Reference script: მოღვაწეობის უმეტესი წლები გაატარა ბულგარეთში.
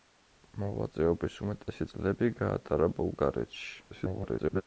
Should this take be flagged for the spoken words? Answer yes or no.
yes